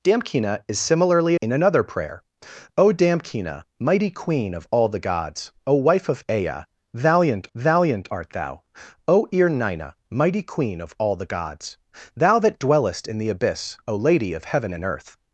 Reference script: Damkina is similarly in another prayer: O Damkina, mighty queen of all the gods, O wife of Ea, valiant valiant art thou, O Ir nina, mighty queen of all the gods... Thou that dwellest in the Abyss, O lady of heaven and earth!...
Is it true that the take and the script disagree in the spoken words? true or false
false